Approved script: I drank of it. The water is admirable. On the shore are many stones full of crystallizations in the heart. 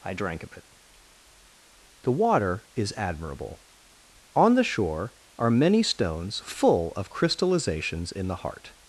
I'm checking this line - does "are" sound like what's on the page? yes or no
yes